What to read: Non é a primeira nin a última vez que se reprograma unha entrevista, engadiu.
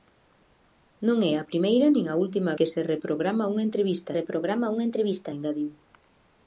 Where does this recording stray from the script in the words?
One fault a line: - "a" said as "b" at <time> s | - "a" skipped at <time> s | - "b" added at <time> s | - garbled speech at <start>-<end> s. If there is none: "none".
- "vez" skipped at 2.5 s
- "reprograma unha entrevista" added at 4.2 s